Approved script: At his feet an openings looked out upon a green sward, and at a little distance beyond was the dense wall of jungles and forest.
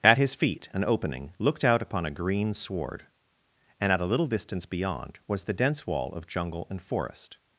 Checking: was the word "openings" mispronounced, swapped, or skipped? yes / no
yes